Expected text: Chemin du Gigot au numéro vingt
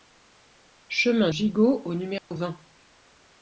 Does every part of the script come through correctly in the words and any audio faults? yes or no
no